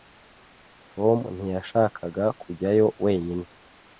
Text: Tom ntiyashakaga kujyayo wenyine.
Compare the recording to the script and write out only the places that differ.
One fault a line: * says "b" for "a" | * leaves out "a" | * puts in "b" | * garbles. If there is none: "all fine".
all fine